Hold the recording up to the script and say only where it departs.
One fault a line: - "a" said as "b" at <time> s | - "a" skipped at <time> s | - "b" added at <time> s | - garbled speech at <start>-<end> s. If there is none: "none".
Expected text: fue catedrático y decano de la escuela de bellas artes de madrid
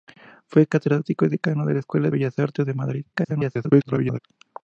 - "de" skipped at 2.1 s
- garbled speech at 3.1-4.2 s